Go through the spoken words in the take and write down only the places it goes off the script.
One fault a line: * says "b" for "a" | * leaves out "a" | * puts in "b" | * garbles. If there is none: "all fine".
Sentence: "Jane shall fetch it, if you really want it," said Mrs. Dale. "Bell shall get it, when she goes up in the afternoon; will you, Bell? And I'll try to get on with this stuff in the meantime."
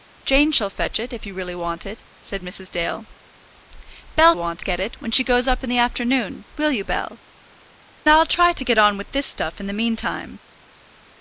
* says "want" for "shall"
* leaves out "And"